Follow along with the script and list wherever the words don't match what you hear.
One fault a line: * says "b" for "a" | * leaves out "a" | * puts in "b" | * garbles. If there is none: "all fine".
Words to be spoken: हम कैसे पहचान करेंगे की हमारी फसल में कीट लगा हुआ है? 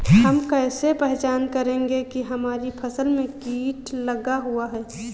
all fine